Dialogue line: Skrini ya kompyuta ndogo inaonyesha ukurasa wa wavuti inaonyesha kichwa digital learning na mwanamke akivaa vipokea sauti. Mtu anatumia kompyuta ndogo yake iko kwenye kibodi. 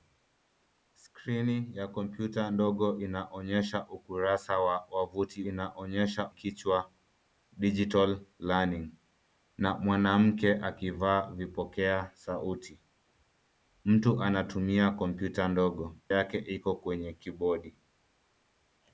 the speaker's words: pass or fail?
pass